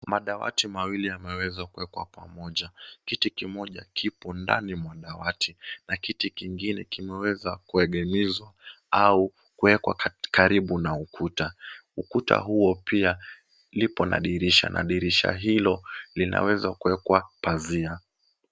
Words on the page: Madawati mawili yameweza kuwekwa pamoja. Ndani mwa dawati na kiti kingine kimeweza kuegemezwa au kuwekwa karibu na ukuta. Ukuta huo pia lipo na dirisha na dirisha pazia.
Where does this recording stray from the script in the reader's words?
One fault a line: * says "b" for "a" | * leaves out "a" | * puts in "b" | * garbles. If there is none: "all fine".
* puts in "Kiti kimoja kipo"
* puts in "hilo linaweza kuwekwa"